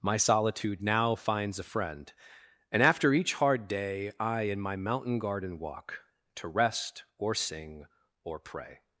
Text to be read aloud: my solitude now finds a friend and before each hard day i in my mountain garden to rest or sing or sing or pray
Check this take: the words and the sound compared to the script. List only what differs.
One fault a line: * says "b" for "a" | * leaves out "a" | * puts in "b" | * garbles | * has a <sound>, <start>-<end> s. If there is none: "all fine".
* says "after" for "before"
* puts in "walk"
* leaves out "sing or"